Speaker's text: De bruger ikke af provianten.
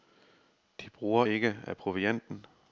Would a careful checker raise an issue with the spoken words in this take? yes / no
no